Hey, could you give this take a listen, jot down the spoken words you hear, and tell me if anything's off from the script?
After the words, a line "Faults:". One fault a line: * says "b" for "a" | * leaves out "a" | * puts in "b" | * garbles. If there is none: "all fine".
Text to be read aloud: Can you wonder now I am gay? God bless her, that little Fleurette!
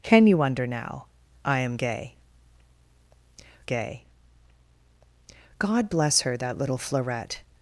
Can you wonder now I am gay gay? God bless her, that little Fleurette!
Faults:
* puts in "gay"